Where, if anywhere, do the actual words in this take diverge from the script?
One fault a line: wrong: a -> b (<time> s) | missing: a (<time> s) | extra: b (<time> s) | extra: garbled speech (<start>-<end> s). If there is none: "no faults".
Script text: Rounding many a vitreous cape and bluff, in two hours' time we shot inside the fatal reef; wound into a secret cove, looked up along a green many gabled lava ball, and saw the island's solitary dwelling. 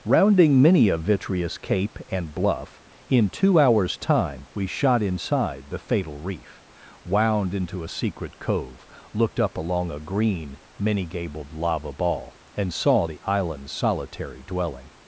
no faults